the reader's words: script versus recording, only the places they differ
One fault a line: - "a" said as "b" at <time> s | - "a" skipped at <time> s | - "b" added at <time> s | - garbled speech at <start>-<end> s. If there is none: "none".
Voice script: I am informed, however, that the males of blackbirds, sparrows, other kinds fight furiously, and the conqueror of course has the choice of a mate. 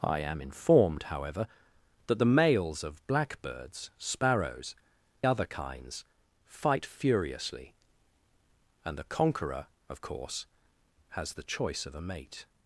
none